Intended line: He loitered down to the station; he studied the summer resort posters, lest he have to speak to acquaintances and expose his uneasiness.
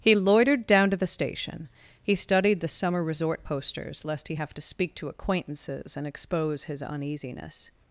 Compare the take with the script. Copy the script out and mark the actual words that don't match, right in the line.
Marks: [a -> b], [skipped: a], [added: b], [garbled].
He loitered down to the station; he studied the summer resort posters, lest he have to speak to acquaintances and expose his uneasiness.